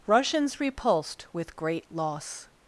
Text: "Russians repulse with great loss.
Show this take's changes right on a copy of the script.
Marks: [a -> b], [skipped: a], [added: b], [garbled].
"Russians [repulse -> repulsed] with great loss.